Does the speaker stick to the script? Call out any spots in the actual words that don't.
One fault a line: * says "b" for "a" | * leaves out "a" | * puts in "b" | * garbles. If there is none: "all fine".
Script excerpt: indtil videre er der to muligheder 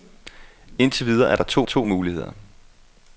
* puts in "to"